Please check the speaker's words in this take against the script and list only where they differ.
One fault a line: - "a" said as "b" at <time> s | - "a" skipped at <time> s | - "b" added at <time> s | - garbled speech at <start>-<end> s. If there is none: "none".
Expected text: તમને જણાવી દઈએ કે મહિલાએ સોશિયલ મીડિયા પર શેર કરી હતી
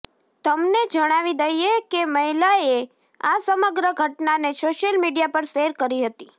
- "આ સમગ્ર ઘટનાને" added at 3.2 s